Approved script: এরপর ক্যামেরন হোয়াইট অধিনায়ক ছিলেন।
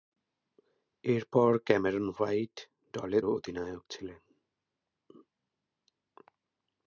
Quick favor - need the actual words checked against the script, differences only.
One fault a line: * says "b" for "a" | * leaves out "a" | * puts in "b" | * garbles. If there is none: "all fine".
all fine